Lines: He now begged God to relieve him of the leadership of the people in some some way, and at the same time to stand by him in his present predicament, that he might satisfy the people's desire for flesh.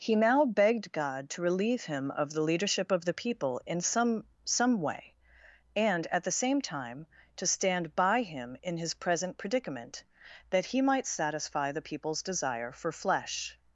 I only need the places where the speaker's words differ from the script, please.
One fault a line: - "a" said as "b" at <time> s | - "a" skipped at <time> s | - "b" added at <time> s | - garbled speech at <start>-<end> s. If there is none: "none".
none